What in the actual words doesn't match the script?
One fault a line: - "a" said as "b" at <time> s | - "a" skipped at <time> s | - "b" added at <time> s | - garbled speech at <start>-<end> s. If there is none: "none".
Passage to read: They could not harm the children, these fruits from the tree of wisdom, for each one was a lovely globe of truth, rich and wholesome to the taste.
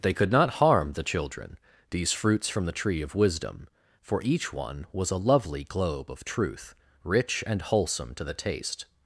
none